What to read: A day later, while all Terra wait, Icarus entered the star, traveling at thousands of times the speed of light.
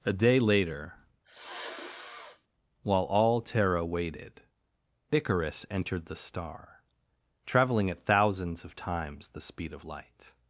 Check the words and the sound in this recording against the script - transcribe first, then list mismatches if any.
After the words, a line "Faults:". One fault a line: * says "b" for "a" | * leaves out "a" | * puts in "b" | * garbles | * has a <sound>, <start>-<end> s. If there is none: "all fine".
A day later, while all Terra waited, Icarus entered the star, traveling at thousands of times the speed of light.
Faults:
* has a sniff, 1.2-2.5 s
* says "waited" for "wait"